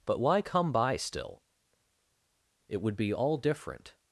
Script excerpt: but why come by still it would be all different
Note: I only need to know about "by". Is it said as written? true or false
true